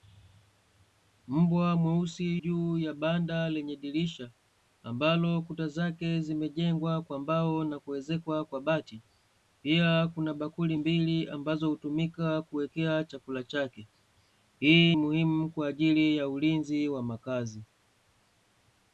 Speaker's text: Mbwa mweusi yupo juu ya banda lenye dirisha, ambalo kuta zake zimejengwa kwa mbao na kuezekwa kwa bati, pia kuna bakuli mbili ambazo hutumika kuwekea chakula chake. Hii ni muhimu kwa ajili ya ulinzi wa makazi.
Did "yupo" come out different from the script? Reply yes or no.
yes